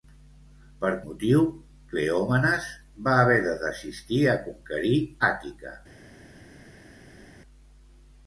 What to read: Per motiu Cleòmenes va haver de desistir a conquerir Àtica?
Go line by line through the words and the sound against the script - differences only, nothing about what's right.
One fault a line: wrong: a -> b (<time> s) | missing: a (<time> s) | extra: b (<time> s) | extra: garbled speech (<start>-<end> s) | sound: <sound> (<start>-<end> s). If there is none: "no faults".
no faults